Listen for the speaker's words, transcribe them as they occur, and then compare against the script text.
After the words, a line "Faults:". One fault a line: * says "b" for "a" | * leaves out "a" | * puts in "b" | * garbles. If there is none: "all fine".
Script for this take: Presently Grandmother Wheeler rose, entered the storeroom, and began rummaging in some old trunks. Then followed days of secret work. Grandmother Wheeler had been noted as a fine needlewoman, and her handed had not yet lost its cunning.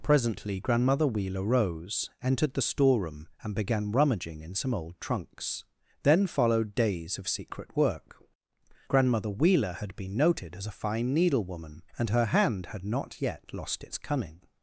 Presently Grandmother Wheeler rose, entered the storeroom, and began rummaging in some old trunks. Then followed days of secret work. Grandmother Wheeler had been noted as a fine needlewoman, and her hand had not yet lost its cunning.
Faults:
* says "hand" for "handed"